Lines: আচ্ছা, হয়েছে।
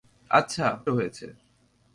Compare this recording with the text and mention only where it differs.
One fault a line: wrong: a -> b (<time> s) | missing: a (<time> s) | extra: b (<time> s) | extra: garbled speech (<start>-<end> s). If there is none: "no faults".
no faults